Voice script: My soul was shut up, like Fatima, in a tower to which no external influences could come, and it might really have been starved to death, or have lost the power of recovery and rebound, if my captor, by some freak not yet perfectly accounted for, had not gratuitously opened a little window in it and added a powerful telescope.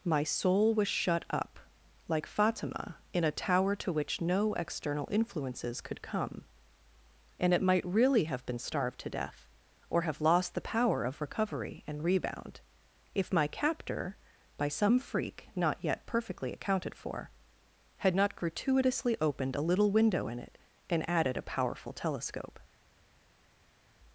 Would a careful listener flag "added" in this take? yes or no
no